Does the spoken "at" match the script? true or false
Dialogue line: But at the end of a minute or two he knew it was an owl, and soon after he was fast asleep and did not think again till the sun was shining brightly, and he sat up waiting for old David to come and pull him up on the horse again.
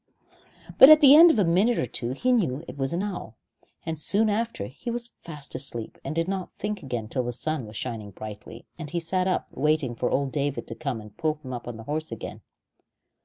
true